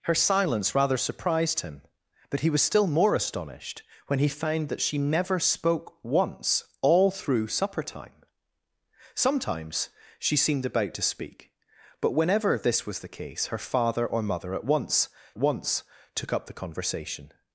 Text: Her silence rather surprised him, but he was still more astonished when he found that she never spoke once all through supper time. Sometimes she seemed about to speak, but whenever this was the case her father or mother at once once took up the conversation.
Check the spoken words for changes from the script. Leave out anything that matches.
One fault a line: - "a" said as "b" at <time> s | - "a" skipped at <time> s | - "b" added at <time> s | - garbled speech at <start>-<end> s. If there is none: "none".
none